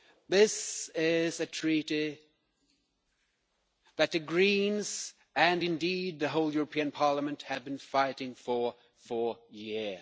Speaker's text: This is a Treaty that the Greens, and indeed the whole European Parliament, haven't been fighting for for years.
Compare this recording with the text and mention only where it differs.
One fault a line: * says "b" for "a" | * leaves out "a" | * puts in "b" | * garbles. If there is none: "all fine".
* says "have" for "haven't"